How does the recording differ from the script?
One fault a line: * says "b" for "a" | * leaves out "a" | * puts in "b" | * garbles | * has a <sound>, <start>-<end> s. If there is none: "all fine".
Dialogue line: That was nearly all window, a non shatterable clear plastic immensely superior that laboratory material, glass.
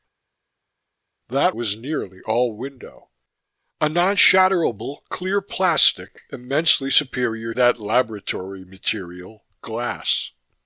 all fine